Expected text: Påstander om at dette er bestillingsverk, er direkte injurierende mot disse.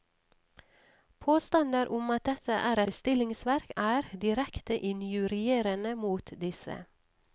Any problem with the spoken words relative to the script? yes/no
no